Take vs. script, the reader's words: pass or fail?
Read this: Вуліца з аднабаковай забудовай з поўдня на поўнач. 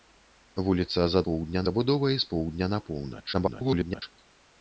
fail